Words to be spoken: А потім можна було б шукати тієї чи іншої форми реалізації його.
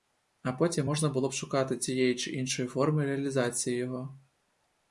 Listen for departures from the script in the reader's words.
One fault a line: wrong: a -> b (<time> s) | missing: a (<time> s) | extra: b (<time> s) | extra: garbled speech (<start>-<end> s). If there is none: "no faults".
no faults